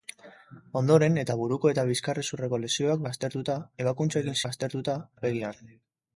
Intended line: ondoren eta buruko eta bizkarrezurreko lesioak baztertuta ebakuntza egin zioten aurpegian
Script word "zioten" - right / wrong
wrong